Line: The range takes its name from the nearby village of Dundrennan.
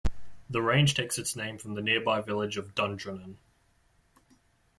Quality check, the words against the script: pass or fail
pass